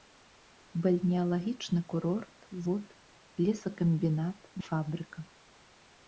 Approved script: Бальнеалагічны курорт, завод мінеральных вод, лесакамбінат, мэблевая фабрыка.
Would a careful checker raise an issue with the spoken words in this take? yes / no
yes